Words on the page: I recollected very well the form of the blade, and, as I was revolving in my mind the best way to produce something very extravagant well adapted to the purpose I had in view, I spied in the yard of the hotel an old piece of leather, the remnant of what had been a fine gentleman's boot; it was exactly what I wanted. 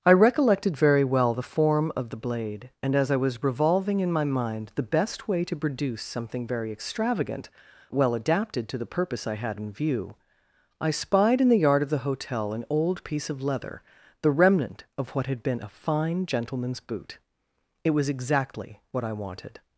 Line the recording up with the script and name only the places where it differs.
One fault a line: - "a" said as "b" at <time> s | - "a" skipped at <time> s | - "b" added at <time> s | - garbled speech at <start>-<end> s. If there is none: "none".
none